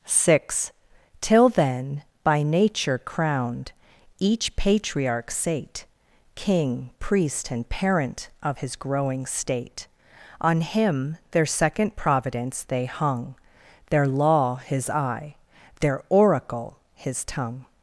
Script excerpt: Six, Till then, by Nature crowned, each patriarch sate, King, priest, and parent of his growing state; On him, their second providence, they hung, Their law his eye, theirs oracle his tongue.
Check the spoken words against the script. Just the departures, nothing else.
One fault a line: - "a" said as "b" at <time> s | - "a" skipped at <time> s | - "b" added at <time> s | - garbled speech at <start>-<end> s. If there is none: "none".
- "theirs" said as "their" at 15.8 s